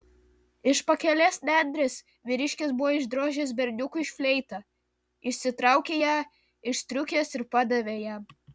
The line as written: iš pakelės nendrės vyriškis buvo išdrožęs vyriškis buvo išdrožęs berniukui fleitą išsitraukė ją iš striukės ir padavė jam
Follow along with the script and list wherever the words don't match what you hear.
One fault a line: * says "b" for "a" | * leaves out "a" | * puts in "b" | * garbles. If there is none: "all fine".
* leaves out "vyriškis buvo išdrožęs"